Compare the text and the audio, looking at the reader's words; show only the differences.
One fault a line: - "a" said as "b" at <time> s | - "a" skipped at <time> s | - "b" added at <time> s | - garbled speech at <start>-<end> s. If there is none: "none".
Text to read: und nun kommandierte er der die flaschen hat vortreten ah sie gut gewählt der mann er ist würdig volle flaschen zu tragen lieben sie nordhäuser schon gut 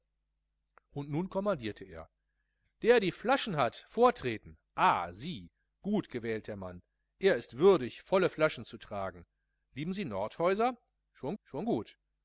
- "schon" added at 11.4 s